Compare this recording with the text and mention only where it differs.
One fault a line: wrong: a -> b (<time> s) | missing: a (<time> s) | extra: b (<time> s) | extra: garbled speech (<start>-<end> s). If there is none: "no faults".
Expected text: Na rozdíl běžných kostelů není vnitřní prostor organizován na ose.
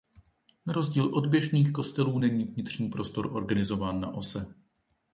extra: od (1.1 s)